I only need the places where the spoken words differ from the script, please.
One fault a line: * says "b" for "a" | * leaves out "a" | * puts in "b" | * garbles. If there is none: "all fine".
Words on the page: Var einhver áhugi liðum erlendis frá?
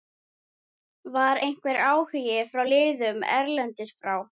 * puts in "frá"